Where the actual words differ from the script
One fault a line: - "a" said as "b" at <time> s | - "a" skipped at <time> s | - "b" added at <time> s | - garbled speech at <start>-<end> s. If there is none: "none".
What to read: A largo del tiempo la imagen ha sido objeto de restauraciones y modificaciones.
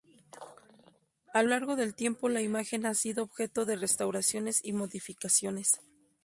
none